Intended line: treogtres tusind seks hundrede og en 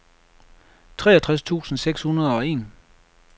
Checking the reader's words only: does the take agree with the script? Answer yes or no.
yes